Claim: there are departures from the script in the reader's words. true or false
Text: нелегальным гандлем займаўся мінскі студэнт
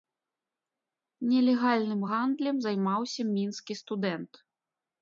false